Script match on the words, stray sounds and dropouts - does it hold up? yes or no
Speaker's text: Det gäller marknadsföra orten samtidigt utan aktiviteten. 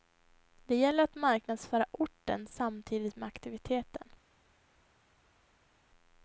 no